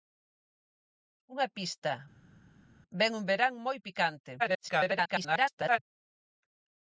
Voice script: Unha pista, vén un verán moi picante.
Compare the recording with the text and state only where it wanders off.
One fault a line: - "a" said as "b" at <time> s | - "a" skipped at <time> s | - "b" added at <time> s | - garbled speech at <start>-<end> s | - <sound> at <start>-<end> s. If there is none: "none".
- garbled speech at 4.4-5.8 s